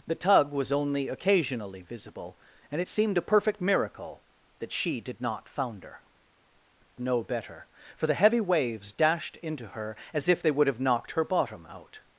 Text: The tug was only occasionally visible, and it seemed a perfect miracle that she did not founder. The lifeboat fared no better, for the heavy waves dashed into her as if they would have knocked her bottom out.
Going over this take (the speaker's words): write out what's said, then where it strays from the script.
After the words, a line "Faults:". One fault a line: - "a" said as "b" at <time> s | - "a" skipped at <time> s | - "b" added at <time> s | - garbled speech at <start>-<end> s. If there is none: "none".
The tug was only occasionally visible, and it seemed a perfect miracle that she did not founder. No better, for the heavy waves dashed into her as if they would have knocked her bottom out.
Faults:
- "The lifeboat fared" skipped at 6.0 s